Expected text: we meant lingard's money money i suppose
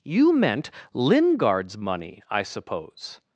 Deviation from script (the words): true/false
true